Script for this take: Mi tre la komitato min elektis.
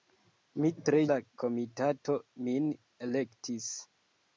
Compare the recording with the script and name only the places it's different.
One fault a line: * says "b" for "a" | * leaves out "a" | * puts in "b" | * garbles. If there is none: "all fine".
all fine